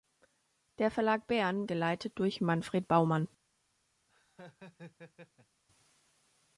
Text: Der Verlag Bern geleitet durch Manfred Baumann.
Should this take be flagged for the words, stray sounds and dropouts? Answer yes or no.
yes